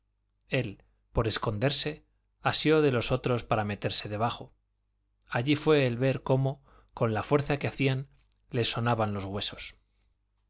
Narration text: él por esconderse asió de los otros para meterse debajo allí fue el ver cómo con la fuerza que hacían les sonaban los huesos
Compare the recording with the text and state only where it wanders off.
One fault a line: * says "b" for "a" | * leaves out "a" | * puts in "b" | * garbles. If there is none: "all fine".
all fine